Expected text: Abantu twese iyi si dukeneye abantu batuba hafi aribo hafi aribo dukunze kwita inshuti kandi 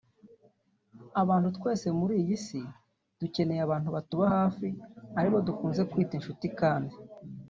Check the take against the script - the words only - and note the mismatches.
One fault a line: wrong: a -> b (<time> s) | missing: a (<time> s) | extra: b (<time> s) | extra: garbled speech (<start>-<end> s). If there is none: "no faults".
extra: muri (2.0 s)
missing: hafi aribo (5.4 s)